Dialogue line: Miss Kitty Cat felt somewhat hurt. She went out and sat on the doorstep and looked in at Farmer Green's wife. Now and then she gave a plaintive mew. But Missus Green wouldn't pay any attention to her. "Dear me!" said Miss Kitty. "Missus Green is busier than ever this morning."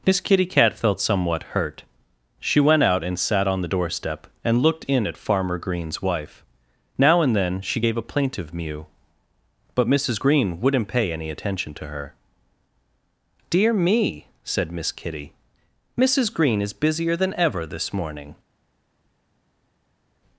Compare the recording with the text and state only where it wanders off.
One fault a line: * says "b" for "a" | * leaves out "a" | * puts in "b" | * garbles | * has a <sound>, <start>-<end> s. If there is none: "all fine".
all fine